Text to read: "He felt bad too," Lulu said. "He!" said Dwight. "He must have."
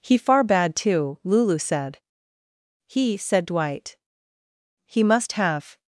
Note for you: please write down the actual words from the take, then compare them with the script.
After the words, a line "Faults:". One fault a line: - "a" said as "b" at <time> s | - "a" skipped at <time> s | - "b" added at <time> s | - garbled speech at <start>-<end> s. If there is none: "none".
"He far bad too," Lulu said. "He!" said Dwight. "He must have."
Faults:
- "felt" said as "far" at 0.2 s